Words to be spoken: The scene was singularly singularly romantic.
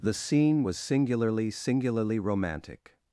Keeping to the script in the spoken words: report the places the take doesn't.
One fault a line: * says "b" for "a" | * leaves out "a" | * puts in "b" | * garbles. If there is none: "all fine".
all fine